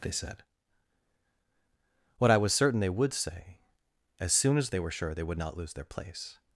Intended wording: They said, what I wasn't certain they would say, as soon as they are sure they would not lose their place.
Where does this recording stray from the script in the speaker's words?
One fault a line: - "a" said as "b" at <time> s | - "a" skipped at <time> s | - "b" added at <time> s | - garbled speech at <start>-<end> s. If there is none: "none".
- "wasn't" said as "was" at 2.4 s
- "are" said as "were" at 4.8 s